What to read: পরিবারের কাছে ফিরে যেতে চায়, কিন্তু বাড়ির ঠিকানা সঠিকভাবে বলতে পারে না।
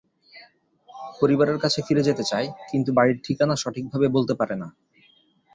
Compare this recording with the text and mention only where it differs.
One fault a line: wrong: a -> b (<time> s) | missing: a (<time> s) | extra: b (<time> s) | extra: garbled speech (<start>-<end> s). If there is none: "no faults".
no faults